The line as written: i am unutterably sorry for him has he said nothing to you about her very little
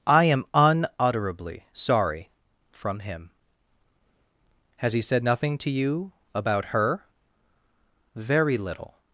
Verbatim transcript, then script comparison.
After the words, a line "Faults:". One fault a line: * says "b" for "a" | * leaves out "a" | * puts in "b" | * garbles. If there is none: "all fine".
i am unutterably sorry from him has he said nothing to you about her very little
Faults:
* says "from" for "for"